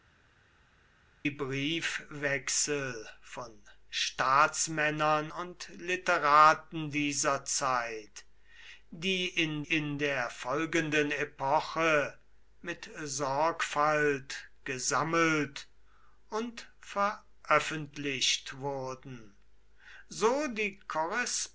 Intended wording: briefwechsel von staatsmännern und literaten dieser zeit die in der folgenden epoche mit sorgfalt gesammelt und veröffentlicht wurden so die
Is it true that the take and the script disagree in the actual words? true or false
true